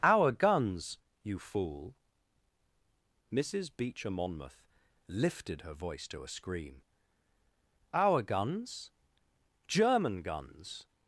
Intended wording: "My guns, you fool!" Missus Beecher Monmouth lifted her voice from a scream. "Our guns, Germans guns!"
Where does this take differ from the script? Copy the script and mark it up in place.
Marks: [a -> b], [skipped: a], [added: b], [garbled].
["My -> Our] guns, you fool!" Missus Beecher Monmouth lifted her voice [from -> to] a scream. "Our guns, [Germans -> German] guns!"